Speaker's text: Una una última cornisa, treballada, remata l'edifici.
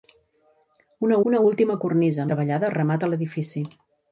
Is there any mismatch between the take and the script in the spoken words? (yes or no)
no